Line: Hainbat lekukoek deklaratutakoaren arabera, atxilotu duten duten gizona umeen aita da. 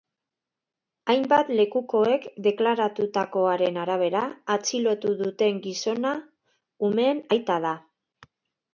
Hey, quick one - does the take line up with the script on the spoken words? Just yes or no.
no